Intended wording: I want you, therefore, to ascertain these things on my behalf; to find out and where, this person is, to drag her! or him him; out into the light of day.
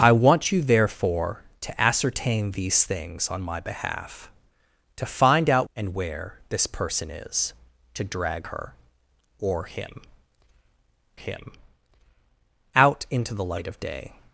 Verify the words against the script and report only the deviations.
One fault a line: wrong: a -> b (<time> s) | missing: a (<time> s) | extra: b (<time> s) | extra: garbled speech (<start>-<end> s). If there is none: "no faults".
no faults